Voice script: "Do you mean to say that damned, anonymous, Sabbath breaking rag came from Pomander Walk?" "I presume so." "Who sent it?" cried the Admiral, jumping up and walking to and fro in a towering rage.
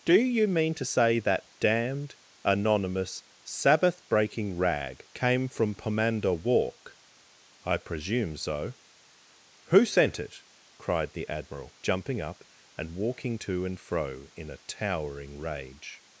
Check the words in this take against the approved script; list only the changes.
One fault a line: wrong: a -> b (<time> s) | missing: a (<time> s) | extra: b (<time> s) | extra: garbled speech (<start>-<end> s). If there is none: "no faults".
no faults